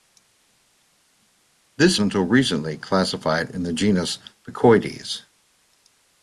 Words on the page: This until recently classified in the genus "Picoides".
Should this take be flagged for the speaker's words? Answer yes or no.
no